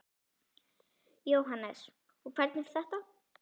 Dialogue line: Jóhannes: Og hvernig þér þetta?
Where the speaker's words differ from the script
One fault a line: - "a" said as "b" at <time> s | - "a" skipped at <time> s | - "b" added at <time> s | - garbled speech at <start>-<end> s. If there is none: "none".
none